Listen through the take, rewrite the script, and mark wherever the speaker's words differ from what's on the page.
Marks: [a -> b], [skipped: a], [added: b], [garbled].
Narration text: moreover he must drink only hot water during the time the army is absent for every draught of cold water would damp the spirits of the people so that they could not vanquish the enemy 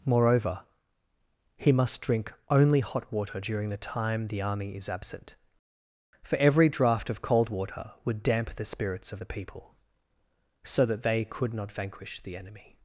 moreover he must drink only hot water during the time the army is absent for every draught of cold water would damp the spirits of the people so that they could not vanquish the enemy